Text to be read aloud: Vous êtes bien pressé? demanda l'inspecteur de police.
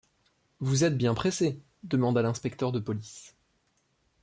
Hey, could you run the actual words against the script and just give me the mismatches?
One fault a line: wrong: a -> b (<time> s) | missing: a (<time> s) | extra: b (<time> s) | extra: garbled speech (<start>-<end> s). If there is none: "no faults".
no faults